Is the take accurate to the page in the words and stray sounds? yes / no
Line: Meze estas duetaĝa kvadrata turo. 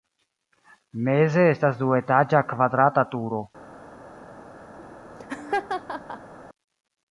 no